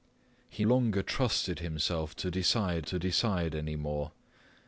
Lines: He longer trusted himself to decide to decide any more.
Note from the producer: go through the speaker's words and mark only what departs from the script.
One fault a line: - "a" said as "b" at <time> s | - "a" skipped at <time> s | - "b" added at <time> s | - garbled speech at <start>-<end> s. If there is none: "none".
none